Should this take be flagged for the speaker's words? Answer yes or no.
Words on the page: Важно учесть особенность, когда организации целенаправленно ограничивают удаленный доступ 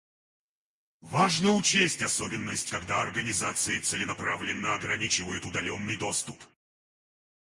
no